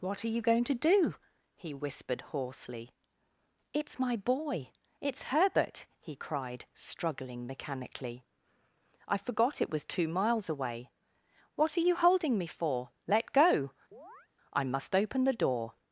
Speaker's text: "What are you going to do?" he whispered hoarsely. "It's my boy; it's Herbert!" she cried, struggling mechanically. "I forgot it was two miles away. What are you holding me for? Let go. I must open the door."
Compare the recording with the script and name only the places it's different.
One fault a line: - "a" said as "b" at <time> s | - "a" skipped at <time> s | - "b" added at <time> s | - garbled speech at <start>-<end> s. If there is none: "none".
- "she" said as "he" at 6.0 s